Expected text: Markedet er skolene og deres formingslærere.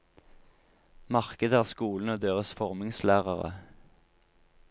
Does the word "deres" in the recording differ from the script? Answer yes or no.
no